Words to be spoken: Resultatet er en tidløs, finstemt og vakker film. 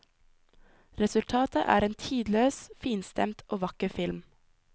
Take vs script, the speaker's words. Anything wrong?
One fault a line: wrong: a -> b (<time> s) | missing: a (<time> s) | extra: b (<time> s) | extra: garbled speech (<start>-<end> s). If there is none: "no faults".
no faults